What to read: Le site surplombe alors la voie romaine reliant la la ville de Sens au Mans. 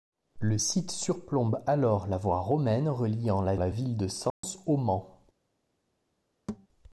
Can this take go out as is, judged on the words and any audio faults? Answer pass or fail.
fail